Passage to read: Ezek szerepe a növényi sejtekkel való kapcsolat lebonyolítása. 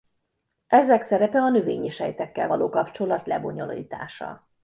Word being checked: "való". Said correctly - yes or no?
yes